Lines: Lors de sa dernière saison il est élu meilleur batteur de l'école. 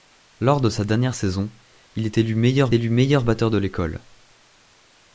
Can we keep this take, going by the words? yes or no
no